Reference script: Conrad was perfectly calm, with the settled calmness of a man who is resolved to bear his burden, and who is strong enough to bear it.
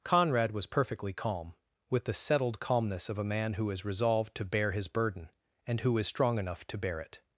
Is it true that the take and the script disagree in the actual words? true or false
false